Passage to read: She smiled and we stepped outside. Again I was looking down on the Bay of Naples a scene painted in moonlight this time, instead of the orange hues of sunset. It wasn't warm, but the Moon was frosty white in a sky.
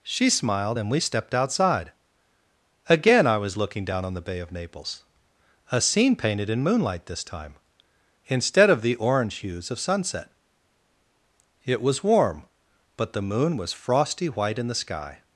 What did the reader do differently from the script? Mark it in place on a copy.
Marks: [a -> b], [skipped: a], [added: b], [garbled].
She smiled and we stepped outside. Again I was looking down on the Bay of Naples a scene painted in moonlight this time, instead of the orange hues of sunset. It [wasn't -> was] warm, but the Moon was frosty white in [a -> the] sky.